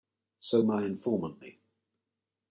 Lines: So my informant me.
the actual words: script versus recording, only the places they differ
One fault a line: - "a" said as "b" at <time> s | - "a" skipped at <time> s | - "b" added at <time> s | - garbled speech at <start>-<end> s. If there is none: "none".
none